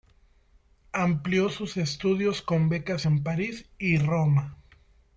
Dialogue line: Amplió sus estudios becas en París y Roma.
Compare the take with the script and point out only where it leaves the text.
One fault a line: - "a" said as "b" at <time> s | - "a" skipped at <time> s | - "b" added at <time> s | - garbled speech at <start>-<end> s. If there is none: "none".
- "con" added at 2.4 s